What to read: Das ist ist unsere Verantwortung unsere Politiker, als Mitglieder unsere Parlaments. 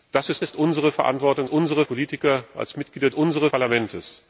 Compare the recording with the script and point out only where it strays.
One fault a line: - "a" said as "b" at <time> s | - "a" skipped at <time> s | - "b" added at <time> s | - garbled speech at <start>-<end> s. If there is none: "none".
none